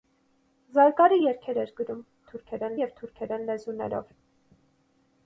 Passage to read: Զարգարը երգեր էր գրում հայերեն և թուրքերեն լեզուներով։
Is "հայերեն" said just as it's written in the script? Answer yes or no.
no